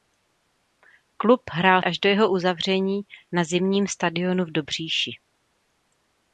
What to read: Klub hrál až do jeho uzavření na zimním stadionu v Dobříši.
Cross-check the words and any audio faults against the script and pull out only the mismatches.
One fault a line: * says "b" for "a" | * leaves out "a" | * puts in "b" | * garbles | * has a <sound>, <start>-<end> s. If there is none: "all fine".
all fine